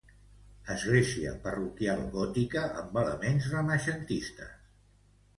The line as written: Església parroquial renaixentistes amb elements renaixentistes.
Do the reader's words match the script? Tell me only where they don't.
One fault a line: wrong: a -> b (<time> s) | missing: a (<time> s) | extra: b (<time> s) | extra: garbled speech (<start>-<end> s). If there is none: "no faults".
wrong: renaixentistes -> gòtica (2.1 s)